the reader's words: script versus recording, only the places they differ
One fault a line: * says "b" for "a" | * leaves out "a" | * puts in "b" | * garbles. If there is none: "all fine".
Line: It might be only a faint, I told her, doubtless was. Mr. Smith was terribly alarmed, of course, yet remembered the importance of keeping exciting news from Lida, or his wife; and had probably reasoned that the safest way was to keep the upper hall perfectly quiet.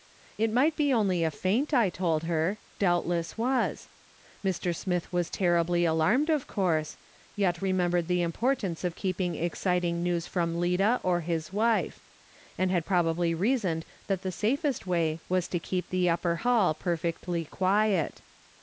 all fine